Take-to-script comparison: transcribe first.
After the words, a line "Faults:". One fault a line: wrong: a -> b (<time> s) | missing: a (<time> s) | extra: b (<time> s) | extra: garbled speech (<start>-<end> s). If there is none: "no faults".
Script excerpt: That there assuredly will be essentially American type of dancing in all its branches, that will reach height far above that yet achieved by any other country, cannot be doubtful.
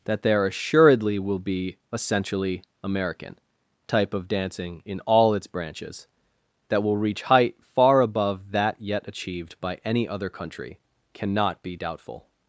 That there assuredly will be essentially American type of dancing in all its branches, that will reach height far above that yet achieved by any other country, cannot be doubtful.
Faults:
no faults